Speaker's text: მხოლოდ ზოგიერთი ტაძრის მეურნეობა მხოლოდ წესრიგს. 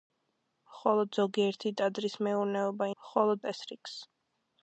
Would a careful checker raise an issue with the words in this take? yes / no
no